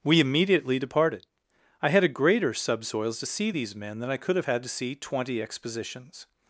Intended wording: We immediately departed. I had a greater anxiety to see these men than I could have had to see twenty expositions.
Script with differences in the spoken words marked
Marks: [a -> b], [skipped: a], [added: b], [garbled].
We immediately departed. I had a greater [anxiety -> subsoils] to see these men than I could have had to see twenty expositions.